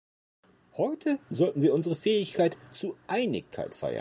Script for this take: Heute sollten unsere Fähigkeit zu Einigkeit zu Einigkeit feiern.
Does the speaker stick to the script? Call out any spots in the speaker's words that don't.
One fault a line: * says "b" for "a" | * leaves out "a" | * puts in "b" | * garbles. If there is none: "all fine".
* puts in "wir"
* leaves out "zu Einigkeit"